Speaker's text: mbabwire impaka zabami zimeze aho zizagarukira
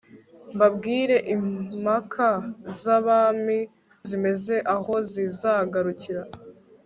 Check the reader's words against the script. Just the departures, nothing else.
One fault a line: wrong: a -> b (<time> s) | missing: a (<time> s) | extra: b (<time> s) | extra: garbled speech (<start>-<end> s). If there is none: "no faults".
no faults